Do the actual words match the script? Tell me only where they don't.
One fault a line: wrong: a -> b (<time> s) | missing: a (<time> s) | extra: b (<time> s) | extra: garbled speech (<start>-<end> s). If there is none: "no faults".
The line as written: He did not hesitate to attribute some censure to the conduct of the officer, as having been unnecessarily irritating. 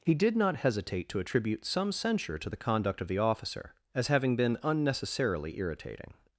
no faults